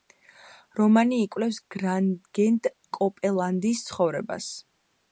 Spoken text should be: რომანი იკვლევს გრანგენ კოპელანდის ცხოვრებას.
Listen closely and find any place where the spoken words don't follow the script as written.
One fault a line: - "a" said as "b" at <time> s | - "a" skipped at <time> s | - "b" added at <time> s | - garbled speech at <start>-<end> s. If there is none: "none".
none